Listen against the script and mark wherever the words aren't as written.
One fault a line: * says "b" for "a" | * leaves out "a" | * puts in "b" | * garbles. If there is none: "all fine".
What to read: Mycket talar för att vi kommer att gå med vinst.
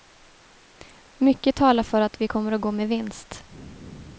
all fine